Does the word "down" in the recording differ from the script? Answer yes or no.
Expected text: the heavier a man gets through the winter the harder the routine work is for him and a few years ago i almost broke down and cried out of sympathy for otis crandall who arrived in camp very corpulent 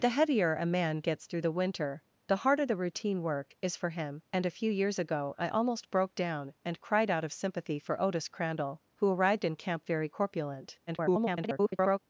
no